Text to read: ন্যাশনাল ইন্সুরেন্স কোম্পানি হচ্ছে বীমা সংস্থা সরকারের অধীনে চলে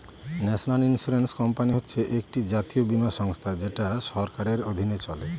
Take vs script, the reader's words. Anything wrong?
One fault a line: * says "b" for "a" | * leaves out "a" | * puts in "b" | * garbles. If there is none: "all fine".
* puts in "একটি জাতীয়"
* puts in "যেটা"